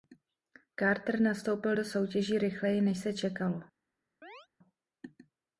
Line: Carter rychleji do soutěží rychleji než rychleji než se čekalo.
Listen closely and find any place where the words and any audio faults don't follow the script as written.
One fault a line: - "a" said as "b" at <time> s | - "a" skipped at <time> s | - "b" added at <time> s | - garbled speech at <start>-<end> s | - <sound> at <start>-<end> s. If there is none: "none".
- "rychleji" said as "nastoupil" at 1.2 s
- "rychleji než" skipped at 3.0 s
- chirp at 4.2-4.5 s